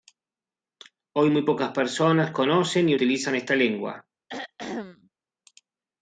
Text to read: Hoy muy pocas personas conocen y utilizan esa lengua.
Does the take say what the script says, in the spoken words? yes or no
no